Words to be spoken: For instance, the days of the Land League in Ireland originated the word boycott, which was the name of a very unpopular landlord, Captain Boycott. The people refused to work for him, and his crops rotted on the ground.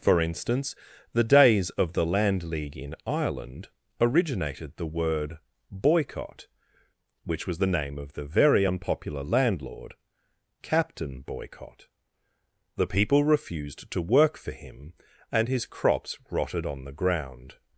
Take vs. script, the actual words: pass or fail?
fail